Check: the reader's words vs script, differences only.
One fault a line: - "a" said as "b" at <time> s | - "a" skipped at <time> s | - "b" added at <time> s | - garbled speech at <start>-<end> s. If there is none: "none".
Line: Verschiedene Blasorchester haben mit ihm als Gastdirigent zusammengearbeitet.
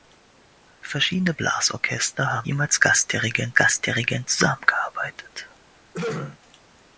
- "mit" skipped at 2.5 s
- "Gastdirigent" added at 3.6 s